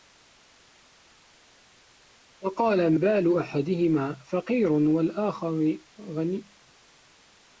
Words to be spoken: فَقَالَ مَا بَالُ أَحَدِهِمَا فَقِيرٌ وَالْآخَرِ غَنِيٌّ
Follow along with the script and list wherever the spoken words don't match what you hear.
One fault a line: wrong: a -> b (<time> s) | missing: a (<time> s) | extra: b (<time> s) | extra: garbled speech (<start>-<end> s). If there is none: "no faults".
missing: مَا (3.0 s)